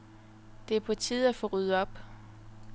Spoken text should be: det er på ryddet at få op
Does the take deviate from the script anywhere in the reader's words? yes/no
yes